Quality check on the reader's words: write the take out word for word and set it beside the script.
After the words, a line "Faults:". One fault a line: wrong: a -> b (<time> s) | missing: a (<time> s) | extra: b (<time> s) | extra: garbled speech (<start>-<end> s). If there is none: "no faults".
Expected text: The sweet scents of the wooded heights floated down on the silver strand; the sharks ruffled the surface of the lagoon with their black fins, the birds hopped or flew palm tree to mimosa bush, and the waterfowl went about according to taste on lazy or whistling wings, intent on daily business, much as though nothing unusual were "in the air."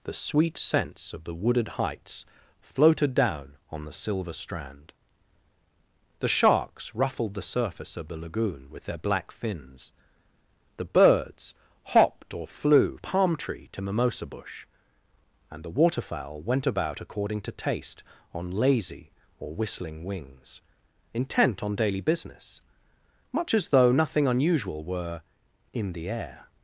The sweet scents of the wooded heights floated down on the silver strand; the sharks ruffled the surface of the lagoon with their black fins, the birds hopped or flew palm tree to mimosa bush, and the waterfowl went about according to taste on lazy or whistling wings, intent on daily business, much as though nothing unusual were "in the air."
Faults:
no faults